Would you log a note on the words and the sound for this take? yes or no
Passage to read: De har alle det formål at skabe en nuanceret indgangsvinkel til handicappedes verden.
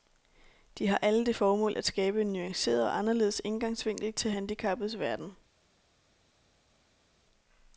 yes